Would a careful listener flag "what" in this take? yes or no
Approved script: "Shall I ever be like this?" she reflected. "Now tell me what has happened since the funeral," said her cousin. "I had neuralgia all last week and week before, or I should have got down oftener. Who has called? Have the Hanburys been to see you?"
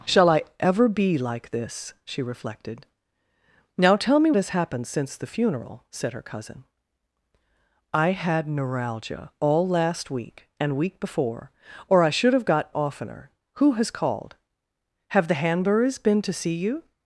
yes